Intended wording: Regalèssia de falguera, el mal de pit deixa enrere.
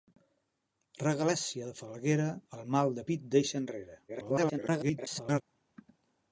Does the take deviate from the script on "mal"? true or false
false